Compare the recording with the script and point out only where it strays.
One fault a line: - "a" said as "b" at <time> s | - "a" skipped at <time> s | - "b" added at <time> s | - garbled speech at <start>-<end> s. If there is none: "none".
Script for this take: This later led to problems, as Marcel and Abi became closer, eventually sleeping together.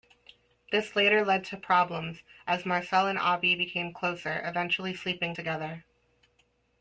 none